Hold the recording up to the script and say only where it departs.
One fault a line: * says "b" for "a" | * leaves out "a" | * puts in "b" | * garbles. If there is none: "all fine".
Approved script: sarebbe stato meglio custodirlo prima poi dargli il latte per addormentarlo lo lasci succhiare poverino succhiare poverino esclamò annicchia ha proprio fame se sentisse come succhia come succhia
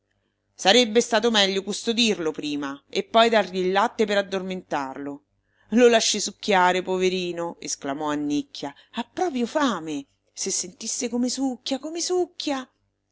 * puts in "e"
* leaves out "succhiare poverino"